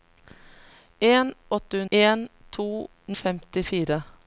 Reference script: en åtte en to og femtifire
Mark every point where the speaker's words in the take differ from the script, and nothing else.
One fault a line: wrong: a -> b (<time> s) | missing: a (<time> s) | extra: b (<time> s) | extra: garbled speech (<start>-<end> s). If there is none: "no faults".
no faults